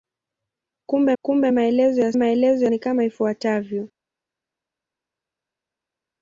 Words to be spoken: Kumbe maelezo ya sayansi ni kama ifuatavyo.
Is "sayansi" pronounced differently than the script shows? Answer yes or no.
yes